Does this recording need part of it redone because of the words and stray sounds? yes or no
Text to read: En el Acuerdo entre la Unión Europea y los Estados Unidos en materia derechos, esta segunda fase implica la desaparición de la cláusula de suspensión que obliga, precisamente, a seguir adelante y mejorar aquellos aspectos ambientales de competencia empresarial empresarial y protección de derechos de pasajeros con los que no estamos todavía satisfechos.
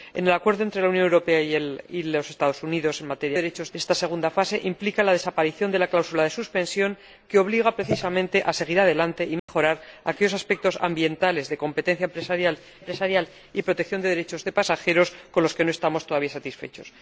yes